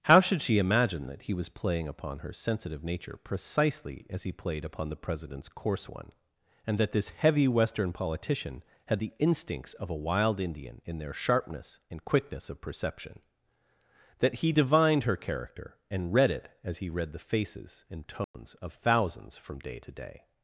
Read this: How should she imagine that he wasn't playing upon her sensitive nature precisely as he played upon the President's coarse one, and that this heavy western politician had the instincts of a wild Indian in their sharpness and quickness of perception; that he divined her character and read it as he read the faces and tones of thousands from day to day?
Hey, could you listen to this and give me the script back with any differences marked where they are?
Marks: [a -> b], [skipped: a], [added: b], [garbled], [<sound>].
How should she imagine that he [wasn't -> was] playing upon her sensitive nature precisely as he played upon the President's coarse one, and that this heavy western politician had the instincts of a wild Indian in their sharpness and quickness of perception; that he divined her character and read it as he read the faces and tones [dropout] of thousands from day to day?